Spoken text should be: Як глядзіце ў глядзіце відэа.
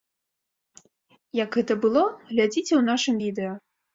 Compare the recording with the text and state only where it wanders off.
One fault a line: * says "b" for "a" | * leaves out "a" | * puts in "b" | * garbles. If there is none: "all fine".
* puts in "гэта было"
* says "нашым" for "глядзіце"